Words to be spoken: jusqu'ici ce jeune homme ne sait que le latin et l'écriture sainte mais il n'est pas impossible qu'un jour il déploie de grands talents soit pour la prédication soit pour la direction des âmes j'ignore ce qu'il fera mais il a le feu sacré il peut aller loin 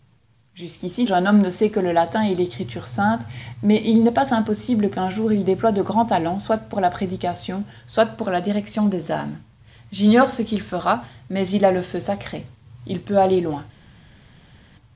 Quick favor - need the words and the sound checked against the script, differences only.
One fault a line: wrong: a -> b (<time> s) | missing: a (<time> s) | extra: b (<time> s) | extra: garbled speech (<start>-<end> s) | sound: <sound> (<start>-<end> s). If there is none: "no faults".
missing: ce (1.1 s)